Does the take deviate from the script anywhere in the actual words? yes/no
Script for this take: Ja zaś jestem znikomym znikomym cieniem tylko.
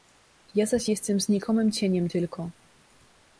yes